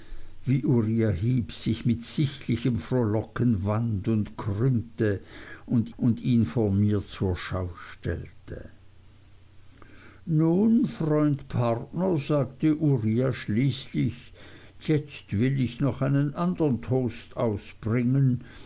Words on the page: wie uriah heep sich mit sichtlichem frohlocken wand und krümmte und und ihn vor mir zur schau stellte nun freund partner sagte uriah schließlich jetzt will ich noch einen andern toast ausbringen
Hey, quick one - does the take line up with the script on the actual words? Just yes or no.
yes